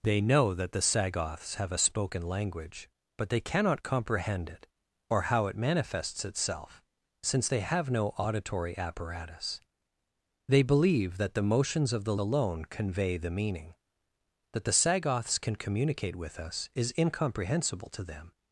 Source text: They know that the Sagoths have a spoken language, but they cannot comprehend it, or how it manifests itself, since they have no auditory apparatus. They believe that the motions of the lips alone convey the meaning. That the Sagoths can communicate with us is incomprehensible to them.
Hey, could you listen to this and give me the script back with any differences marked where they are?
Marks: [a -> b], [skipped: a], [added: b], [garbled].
They know that the Sagoths have a spoken language, but they cannot comprehend it, or how it manifests itself, since they have no auditory apparatus. They believe that the motions of the [skipped: lips] alone convey the meaning. That the Sagoths can communicate with us is incomprehensible to them.